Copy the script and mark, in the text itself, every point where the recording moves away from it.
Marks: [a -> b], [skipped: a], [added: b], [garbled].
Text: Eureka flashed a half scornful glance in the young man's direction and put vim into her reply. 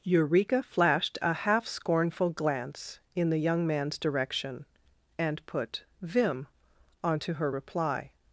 Eureka flashed a half scornful glance in the young man's direction and put vim [into -> onto] her reply.